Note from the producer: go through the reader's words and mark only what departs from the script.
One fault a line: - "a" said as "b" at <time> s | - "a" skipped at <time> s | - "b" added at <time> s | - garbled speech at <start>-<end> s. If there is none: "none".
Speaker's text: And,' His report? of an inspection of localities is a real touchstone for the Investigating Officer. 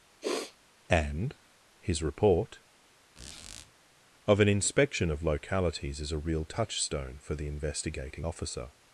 none